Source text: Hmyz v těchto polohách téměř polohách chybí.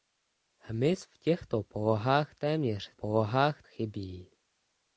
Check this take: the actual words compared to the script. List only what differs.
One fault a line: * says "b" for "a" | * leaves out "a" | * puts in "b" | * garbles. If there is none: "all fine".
all fine